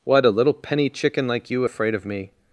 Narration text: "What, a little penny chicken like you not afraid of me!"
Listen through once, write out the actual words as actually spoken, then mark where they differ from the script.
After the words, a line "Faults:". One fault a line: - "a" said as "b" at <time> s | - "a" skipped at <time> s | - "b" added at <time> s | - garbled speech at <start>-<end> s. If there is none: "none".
"What, a little penny chicken like you afraid of me!"
Faults:
- "not" skipped at 1.6 s